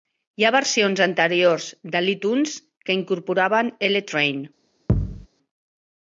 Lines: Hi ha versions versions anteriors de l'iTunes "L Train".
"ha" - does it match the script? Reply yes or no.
yes